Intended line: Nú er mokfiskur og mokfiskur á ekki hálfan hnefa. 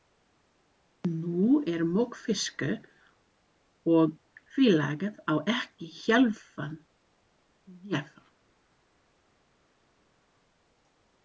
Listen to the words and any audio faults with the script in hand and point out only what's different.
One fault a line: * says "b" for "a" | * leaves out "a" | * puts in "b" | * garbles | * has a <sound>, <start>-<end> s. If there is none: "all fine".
* says "félagið" for "mokfiskur"